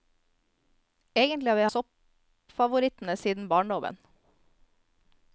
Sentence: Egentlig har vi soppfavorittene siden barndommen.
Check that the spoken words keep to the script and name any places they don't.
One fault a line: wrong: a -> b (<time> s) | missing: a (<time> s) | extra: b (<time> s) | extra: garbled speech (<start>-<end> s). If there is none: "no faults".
no faults